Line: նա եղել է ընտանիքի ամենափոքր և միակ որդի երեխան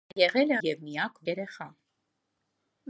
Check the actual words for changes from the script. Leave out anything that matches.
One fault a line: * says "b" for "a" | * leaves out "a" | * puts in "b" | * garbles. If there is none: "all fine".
* leaves out "ընտանիքի ամենափոքր"
* leaves out "որդի"